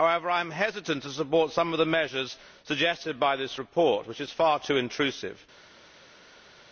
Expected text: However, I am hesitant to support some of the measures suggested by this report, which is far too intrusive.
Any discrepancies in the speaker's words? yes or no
no